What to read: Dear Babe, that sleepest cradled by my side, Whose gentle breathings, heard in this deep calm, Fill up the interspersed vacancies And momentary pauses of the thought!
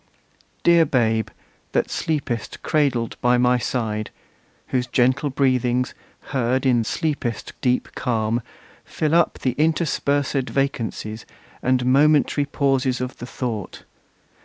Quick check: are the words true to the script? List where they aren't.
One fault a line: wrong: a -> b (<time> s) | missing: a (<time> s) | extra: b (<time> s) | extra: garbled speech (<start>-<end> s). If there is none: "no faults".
wrong: this -> sleepest (6.9 s)